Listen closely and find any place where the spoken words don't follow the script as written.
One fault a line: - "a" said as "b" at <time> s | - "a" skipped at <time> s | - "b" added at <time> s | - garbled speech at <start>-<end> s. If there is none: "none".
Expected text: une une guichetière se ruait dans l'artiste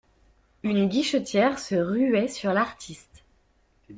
- "une" skipped at 0.9 s
- "dans" said as "sur" at 2.3 s